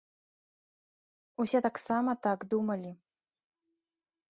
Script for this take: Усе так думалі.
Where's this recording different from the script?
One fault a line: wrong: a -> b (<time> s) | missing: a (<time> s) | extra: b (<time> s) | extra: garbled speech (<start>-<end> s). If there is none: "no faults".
extra: таксама (1.7 s)